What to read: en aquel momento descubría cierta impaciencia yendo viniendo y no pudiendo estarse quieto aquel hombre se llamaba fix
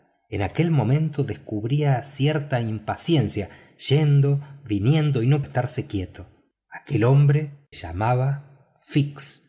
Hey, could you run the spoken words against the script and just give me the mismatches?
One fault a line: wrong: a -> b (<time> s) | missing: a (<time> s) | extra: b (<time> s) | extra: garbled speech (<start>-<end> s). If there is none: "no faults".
missing: pudiendo (5.4 s)
missing: se (7.7 s)